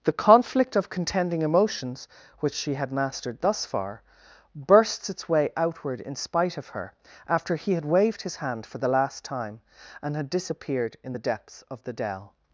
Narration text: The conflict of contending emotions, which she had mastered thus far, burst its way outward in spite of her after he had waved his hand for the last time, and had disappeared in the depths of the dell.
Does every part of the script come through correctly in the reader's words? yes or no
no